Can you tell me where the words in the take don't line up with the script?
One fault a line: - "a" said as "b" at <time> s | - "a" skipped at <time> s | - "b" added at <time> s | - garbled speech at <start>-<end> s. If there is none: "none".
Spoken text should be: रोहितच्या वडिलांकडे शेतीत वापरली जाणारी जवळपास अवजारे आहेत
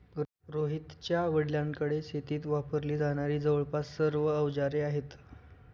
- "सर्व" added at 4.0 s